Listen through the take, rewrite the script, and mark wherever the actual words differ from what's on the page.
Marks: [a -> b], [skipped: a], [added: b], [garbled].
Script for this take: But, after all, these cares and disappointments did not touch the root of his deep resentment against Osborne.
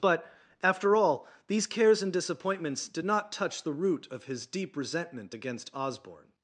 But, after all, these cares and disappointments did not touch the root of his deep resentment against Osborne.